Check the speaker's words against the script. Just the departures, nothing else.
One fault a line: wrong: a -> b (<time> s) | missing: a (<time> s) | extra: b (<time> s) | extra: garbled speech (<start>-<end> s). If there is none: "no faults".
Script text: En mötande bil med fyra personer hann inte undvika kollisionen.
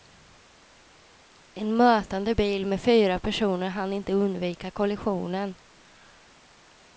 no faults